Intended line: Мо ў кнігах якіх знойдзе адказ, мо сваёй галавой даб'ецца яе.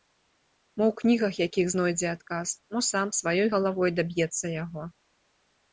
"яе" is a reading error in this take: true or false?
true